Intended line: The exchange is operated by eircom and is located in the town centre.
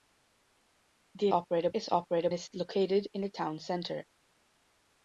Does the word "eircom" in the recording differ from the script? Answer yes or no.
yes